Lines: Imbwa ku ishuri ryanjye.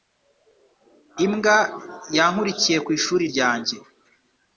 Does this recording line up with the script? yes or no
no